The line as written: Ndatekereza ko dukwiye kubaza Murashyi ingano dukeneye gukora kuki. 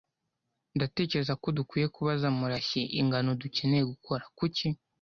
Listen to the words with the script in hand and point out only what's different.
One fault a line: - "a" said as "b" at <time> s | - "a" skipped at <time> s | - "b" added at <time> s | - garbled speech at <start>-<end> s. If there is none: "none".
none